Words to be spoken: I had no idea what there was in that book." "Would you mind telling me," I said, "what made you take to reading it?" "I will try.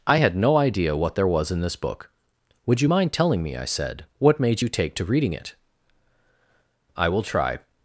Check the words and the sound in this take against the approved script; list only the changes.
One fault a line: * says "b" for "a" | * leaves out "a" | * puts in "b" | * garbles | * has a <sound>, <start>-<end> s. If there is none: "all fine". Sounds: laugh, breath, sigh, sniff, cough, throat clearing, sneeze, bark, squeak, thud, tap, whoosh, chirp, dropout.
* says "this" for "that"